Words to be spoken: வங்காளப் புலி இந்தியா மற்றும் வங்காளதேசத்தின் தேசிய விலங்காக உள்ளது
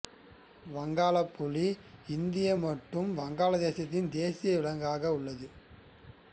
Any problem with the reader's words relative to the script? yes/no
no